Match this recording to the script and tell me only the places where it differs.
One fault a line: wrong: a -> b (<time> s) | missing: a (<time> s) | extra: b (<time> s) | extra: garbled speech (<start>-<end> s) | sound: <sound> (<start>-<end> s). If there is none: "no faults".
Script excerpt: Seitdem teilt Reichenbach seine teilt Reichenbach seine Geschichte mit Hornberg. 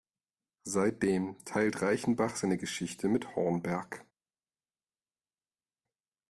missing: teilt Reichenbach seine (2.6 s)